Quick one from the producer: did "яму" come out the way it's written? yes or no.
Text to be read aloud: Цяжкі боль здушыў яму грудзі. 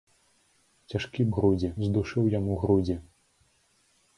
yes